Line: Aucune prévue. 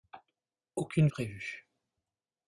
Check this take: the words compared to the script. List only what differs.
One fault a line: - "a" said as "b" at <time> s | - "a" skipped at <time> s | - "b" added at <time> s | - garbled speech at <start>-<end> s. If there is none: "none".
none